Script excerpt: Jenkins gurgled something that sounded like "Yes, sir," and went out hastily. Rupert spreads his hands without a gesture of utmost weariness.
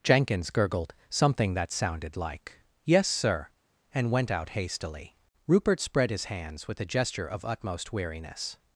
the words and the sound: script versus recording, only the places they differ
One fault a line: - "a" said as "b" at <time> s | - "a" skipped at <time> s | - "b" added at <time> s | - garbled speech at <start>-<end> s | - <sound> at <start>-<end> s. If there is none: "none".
- "spreads" said as "spread" at 5.8 s
- "without" said as "with" at 6.7 s